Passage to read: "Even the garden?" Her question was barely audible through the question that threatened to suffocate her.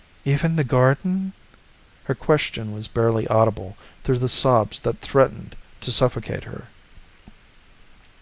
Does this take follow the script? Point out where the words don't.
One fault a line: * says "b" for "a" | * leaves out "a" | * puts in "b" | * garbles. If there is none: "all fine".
* says "sobs" for "question"